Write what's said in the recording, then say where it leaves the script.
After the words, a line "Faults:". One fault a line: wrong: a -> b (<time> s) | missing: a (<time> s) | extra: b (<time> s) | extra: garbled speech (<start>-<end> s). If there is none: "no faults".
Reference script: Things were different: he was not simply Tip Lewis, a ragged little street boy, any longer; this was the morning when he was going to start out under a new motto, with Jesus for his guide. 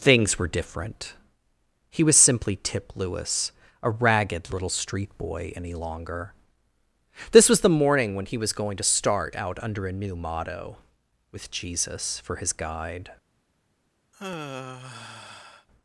Things were different: he was simply Tip Lewis, a ragged little street boy, any longer; this was the morning when he was going to start out under a new motto, with Jesus for his guide.
Faults:
missing: not (2.2 s)